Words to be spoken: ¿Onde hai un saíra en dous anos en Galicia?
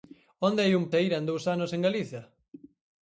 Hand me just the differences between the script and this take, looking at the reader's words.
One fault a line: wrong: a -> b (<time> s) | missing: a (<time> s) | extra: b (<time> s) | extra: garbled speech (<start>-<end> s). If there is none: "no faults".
no faults